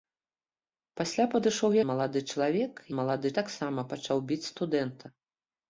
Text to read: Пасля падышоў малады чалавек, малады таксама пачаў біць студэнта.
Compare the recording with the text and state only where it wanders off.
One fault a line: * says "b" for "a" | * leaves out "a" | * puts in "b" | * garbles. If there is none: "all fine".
all fine